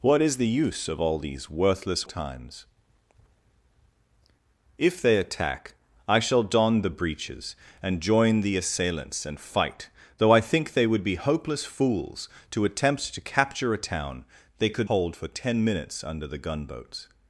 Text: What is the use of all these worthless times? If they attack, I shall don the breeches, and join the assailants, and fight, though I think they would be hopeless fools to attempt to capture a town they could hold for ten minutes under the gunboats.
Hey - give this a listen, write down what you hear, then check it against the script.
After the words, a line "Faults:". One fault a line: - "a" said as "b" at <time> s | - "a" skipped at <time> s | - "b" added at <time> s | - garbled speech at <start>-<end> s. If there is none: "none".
What is the use of all these worthless times? If they attack, I shall don the breeches, and join the assailants, and fight, though I think they would be hopeless fools to attempt to capture a town they could hold for ten minutes under the gunboats.
Faults:
none